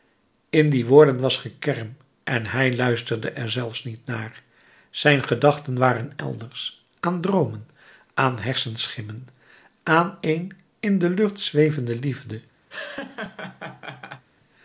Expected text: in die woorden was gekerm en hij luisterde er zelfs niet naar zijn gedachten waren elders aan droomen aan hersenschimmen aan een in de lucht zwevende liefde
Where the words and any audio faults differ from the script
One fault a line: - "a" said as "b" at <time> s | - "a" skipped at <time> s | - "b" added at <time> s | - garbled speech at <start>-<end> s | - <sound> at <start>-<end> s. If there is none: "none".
- laugh at 12.7-14.2 s